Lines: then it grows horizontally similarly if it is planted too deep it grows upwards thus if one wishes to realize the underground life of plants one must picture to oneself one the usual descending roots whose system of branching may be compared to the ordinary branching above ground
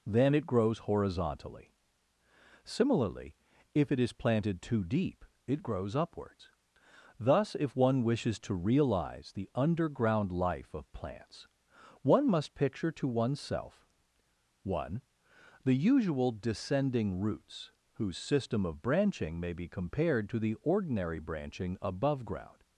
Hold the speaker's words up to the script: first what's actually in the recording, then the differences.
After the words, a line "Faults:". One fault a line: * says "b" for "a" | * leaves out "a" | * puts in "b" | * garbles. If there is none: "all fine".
then it grows horizontally similarly if it is planted too deep it grows upwards thus if one wishes to realize the underground life of plants one must picture to oneself one the usual descending roots whose system of branching may be compared to the ordinary branching above ground
Faults:
all fine